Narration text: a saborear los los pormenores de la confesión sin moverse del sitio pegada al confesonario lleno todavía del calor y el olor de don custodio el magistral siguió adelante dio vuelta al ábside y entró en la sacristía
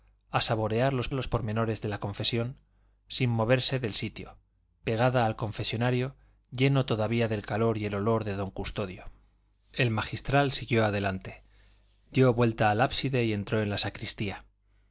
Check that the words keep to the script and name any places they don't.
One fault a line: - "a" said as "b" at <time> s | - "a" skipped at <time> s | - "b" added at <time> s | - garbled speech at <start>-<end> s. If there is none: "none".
none